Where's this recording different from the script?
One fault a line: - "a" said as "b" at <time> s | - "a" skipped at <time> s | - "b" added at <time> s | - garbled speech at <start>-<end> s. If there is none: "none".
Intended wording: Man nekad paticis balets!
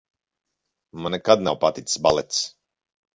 - "nav" added at 1.5 s